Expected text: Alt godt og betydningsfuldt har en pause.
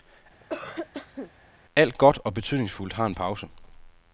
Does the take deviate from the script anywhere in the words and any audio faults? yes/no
yes